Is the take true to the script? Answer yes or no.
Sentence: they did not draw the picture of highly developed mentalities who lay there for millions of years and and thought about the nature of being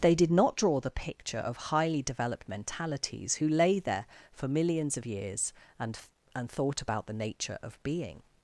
yes